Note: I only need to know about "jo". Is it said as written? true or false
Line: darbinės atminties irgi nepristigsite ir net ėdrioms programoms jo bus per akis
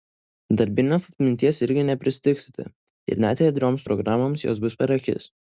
false